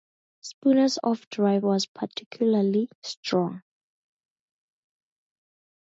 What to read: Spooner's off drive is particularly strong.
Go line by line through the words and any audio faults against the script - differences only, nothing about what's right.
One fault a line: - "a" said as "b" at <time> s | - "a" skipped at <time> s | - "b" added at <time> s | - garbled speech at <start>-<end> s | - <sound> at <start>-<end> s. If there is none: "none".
- "is" said as "was" at 1.6 s